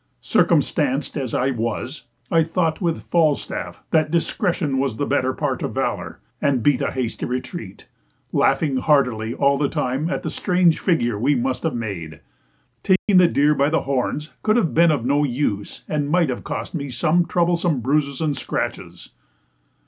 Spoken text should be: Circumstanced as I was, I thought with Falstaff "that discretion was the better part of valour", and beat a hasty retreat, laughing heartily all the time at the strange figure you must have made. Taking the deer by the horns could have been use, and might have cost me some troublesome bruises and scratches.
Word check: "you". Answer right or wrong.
wrong